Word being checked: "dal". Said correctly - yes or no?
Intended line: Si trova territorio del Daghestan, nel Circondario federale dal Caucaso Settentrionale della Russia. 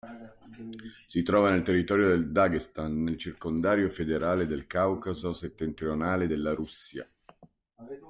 no